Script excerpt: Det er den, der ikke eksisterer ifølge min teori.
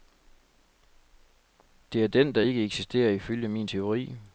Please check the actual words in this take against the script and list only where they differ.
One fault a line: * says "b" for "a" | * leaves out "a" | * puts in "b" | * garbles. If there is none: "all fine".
all fine